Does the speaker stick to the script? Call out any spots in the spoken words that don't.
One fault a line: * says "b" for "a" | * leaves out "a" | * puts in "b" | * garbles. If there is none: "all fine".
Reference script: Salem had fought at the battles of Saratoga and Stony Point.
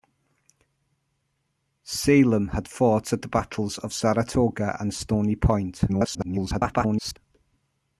* garbles